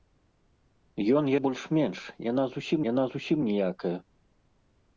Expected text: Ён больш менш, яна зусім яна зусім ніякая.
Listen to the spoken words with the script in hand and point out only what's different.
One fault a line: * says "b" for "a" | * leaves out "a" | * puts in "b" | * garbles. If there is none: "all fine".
all fine